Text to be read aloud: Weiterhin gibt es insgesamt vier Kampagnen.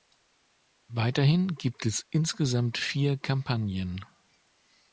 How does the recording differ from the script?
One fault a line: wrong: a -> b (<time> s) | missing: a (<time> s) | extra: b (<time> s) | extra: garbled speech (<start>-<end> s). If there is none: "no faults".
no faults